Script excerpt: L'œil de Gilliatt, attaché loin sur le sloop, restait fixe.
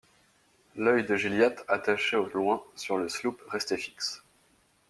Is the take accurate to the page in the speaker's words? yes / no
no